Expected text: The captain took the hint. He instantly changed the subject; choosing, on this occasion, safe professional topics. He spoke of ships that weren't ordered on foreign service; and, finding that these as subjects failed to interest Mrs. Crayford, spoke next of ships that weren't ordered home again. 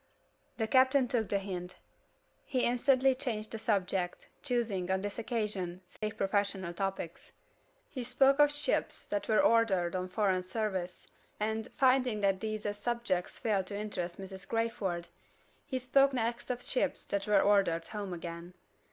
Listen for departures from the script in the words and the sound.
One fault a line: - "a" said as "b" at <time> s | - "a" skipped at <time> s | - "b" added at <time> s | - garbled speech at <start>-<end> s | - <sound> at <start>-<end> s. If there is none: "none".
- dropout at 6.0-6.0 s
- "weren't" said as "were" at 9.3 s
- "he" added at 15.7 s
- "weren't" said as "were" at 17.3 s